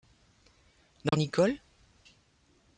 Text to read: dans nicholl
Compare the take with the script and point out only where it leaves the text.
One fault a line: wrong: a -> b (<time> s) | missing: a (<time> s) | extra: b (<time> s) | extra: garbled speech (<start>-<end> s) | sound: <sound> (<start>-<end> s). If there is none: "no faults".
sound: dropout (1.1-1.1 s)